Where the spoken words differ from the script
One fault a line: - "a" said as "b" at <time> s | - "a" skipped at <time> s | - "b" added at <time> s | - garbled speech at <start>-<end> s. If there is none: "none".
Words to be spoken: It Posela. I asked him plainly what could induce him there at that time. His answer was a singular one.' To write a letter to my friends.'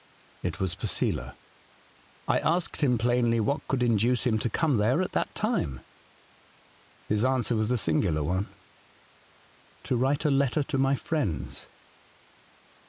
- "was" added at 0.6 s
- "to come" added at 4.4 s